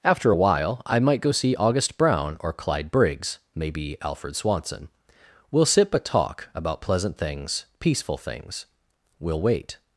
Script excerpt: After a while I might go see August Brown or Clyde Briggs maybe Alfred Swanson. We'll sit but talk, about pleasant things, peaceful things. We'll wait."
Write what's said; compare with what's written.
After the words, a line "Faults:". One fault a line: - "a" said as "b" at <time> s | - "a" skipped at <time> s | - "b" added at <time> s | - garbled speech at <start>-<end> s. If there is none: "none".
After a while I might go see August Brown or Clyde Briggs maybe Alfred Swanson. We'll sit but talk, about pleasant things, peaceful things. We'll wait."
Faults:
none